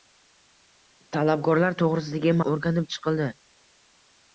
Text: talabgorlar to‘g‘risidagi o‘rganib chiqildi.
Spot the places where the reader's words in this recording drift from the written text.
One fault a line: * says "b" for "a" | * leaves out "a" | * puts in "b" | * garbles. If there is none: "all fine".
all fine